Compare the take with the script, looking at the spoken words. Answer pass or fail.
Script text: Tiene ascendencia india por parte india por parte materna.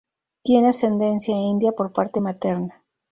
fail